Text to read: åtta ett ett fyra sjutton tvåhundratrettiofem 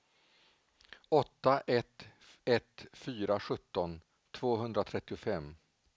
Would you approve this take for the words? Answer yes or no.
yes